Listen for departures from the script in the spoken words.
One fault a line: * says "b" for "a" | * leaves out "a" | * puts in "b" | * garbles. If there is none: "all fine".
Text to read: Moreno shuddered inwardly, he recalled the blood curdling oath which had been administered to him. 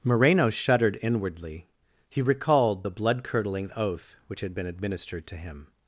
all fine